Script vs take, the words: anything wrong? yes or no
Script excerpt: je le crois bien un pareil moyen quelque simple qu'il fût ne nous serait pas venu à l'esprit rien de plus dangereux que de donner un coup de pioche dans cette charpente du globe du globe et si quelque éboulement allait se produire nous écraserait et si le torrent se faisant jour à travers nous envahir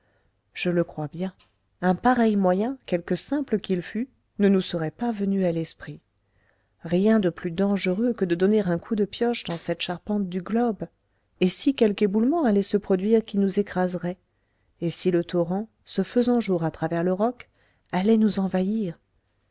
yes